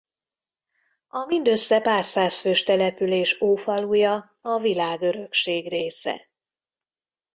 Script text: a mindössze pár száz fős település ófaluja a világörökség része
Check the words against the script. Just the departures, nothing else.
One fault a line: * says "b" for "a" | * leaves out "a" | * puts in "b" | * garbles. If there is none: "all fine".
all fine